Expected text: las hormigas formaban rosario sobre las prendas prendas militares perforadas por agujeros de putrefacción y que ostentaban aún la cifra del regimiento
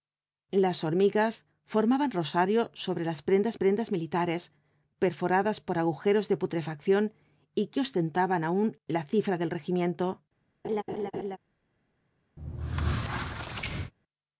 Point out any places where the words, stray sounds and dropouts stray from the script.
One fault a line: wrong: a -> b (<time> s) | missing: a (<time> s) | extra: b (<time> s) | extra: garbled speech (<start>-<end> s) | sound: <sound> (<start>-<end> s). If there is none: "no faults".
sound: laugh (10.6-11.4 s)
sound: squeak (12.4-13.9 s)